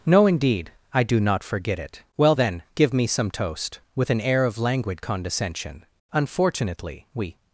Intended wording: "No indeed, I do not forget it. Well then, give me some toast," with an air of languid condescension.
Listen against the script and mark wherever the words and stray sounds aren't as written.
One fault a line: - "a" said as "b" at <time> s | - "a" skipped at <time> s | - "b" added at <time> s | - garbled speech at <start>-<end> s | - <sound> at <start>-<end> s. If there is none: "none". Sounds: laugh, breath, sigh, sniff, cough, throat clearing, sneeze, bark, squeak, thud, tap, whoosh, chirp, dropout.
- "Unfortunately we" added at 6.1 s